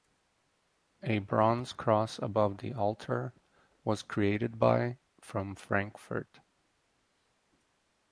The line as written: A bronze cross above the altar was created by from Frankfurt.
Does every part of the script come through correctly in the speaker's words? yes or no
yes